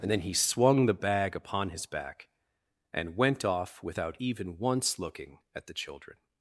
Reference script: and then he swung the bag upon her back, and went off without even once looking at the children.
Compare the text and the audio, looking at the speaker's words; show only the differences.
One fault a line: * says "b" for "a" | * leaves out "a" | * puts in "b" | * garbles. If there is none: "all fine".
* says "his" for "her"